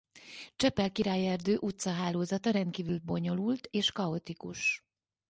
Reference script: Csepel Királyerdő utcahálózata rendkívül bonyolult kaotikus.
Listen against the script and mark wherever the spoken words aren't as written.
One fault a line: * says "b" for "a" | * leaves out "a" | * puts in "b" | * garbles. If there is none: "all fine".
* puts in "és"